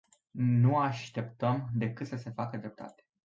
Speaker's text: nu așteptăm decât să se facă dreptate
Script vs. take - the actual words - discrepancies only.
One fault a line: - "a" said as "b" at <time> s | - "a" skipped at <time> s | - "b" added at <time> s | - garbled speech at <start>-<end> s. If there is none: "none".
none